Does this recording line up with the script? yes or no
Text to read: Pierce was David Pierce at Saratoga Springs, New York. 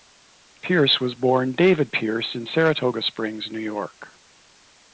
no